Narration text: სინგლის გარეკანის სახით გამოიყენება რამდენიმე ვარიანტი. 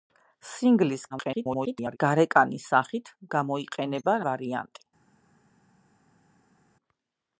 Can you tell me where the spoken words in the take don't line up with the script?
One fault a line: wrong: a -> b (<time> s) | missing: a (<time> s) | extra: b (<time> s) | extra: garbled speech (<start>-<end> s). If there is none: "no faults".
extra: garbled speech (1.1-2.0 s)
missing: რამდენიმე (4.2 s)